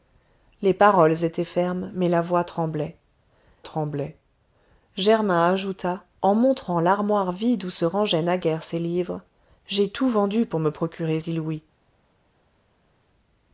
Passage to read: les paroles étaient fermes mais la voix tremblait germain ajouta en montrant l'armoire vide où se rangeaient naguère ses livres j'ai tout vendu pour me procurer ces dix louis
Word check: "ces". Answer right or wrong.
wrong